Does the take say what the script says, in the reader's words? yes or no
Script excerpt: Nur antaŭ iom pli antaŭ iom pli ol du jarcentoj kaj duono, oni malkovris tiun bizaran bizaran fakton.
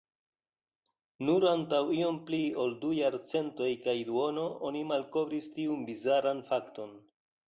no